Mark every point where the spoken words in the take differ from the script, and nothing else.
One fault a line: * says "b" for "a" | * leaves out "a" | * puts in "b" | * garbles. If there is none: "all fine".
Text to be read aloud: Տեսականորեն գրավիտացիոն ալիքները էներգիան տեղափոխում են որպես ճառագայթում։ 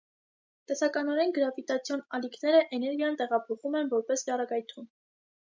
all fine